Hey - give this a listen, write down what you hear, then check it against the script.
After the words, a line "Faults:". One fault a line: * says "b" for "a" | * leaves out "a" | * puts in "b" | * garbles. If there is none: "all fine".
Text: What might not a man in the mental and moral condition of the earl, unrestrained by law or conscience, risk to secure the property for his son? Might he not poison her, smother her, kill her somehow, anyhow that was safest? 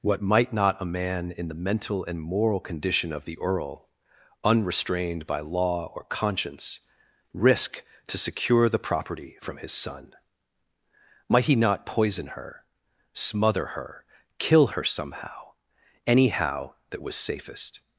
What might not a man in the mental and moral condition of the earl, unrestrained by law or conscience, risk to secure the property from his son? Might he not poison her, smother her, kill her somehow, anyhow that was safest?
Faults:
* says "from" for "for"